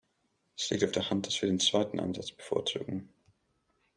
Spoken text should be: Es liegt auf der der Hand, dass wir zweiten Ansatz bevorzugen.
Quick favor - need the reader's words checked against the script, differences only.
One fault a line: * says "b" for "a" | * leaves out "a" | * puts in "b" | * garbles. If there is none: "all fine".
* leaves out "der"
* puts in "den"